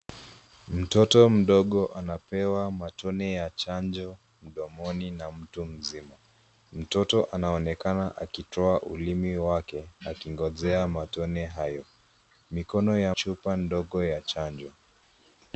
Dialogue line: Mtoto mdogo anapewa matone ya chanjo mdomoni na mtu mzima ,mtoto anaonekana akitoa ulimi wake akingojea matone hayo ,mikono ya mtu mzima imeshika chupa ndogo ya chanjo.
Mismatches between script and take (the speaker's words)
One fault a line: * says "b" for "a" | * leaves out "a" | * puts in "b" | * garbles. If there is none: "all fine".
* leaves out "mtu mzima imeshika"